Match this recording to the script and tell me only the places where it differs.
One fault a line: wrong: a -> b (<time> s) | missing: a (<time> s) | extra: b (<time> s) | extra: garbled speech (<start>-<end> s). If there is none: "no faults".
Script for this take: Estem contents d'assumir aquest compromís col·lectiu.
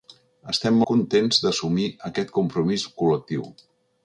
no faults